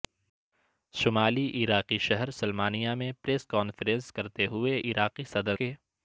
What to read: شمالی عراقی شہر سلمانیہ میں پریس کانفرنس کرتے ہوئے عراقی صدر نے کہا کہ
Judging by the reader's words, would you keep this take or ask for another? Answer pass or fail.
fail